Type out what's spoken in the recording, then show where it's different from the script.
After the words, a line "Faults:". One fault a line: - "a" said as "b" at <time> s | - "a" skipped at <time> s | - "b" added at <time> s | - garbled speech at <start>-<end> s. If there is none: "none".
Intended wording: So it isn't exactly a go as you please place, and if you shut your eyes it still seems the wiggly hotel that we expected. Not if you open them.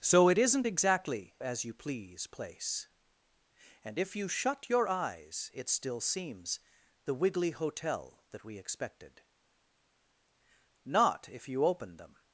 So it isn't exactly as you please place, and if you shut your eyes it still seems the wiggly hotel that we expected. Not if you open them.
Faults:
- "a go" skipped at 1.3 s